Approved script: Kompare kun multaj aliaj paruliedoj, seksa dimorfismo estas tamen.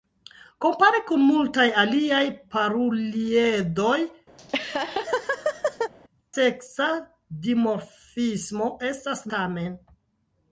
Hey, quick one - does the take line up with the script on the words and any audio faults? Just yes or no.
no